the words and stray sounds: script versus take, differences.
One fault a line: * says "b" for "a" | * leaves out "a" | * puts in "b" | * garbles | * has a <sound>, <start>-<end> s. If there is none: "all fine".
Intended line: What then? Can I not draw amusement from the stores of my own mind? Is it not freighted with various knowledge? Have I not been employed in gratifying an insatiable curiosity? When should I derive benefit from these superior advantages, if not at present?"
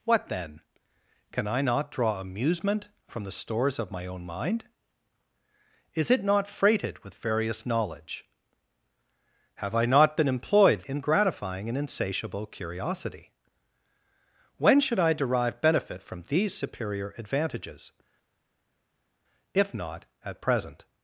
all fine